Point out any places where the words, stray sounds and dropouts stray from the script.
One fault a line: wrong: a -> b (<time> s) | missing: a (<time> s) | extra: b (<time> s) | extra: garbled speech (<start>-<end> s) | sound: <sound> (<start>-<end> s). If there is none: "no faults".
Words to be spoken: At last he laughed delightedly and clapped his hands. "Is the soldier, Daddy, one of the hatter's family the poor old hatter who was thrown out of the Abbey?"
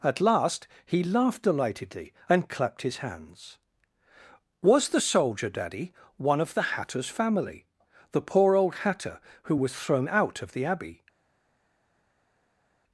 wrong: Is -> Was (4.6 s)